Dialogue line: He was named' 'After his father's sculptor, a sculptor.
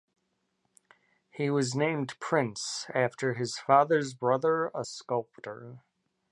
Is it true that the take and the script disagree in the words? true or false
true